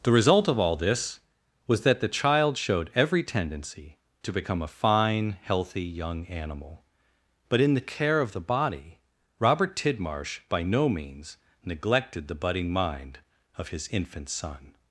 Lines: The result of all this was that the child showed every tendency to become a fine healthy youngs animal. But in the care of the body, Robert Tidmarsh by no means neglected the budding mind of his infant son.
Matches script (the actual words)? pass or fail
fail